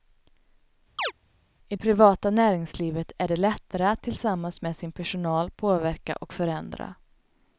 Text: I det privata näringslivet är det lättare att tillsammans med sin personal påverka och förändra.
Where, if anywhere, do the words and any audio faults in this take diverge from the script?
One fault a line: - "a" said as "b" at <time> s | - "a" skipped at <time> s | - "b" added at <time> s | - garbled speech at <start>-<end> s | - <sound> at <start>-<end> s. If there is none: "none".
- chirp at 1.0-1.1 s
- "det" skipped at 1.8 s